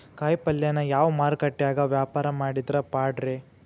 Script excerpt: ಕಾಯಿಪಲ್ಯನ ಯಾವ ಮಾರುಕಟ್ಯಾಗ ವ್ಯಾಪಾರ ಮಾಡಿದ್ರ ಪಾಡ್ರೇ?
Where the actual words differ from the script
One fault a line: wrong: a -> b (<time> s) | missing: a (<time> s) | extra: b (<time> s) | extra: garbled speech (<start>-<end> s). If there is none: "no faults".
no faults